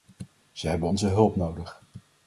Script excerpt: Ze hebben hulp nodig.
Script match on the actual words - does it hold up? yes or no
no